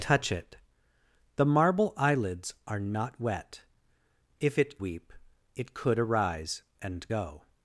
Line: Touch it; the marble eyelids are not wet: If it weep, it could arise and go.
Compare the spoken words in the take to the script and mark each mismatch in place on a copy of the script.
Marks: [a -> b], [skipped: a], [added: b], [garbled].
Touch it; the marble eyelids are not wet: If it weep, it could arise and go.